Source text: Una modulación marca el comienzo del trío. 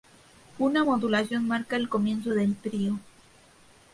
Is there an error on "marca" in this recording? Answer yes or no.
no